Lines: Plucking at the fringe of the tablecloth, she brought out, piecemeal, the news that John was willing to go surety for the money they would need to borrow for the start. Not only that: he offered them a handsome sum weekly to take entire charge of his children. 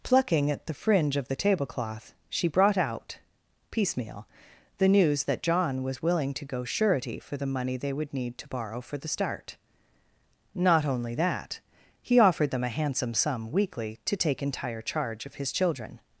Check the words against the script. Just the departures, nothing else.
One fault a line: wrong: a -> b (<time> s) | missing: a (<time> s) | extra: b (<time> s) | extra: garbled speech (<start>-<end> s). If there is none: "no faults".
no faults